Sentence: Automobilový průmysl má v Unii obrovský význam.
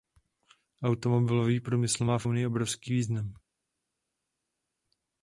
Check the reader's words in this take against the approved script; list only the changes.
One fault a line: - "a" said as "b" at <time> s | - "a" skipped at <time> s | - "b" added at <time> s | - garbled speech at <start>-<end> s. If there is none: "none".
none